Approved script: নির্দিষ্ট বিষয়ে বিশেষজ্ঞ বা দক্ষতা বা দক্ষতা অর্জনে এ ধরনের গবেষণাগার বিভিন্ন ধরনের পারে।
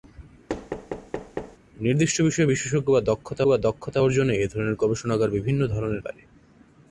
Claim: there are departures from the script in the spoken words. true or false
false